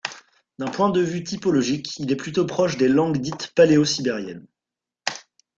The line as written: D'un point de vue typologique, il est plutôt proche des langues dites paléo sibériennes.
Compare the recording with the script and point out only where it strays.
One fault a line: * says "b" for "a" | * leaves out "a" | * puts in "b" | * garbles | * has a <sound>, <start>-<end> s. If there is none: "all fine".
all fine